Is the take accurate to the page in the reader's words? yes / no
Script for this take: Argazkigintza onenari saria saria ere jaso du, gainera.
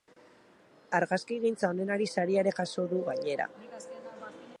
no